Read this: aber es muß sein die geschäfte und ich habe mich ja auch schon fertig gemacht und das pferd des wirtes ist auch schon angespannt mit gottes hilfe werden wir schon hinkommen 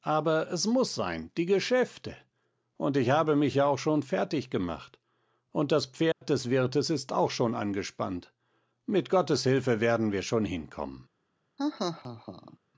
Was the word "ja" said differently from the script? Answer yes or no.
no